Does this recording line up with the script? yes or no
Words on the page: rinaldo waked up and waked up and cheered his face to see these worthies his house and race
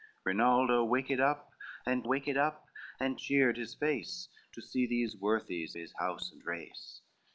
yes